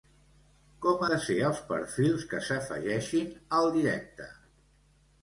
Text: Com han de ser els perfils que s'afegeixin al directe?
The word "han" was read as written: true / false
false